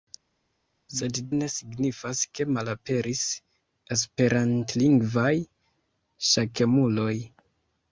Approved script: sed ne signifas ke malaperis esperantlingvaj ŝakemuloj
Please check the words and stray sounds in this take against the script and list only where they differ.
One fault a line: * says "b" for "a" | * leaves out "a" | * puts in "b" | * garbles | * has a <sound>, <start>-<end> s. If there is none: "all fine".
all fine